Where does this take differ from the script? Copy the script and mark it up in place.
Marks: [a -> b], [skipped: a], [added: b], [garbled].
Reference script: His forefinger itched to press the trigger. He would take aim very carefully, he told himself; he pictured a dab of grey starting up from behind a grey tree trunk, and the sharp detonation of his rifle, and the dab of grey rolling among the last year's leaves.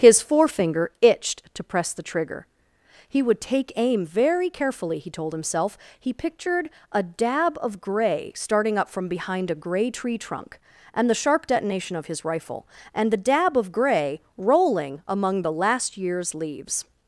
His forefinger itched to press the trigger. He would take aim very carefully, he told himself; he pictured a dab of grey starting up from behind a grey tree trunk, and the sharp detonation of his rifle, and the dab of grey rolling among the last year's leaves.